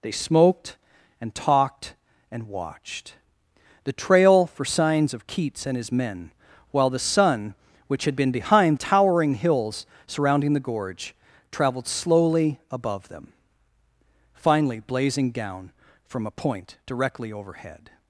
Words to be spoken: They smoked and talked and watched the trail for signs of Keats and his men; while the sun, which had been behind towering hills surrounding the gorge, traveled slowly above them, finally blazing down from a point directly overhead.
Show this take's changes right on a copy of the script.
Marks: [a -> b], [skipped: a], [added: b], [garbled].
They smoked and talked and watched the trail for signs of Keats and his men; while the sun, which had been behind towering hills surrounding the gorge, traveled slowly above them, finally blazing down from a point directly overhead.